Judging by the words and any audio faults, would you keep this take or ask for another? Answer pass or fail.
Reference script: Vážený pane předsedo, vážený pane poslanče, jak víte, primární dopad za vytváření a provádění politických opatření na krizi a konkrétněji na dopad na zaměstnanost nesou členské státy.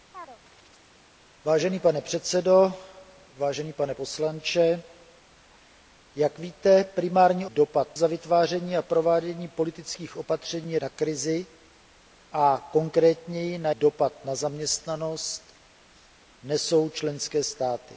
fail